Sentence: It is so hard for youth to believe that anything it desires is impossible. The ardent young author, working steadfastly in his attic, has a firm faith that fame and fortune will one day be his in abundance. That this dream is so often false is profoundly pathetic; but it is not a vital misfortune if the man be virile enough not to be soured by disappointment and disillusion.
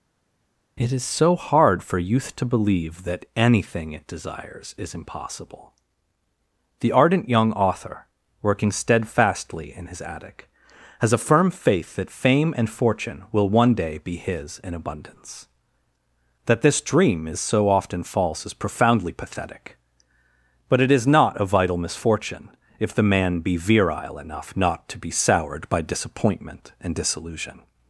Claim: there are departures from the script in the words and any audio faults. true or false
false